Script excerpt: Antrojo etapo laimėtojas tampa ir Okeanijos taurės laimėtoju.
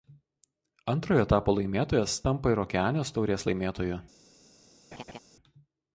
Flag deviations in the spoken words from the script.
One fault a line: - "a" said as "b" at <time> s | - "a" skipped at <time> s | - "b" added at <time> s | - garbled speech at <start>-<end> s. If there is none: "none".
none